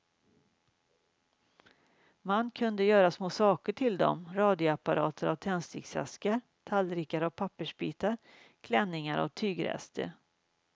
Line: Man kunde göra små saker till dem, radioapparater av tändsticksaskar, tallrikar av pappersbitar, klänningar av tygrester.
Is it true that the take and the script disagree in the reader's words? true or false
false